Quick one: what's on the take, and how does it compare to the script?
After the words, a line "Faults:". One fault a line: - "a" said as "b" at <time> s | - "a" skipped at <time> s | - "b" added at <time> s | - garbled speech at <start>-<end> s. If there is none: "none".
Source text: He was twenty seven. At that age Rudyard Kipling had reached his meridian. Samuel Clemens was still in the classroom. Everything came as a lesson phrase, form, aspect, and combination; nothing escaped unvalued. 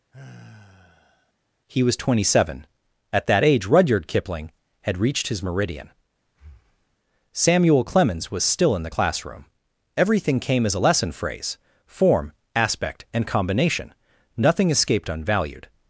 He was twenty seven. At that age Rudyard Kipling had reached his meridian. Samuel Clemens was still in the classroom. Everything came as a lesson phrase, form, aspect, and combination; nothing escaped unvalued.
Faults:
none